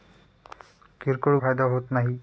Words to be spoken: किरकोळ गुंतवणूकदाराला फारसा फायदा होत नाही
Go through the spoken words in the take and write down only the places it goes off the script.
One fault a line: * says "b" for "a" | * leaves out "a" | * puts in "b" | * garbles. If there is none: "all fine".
* leaves out "गुंतवणूकदाराला फारसा"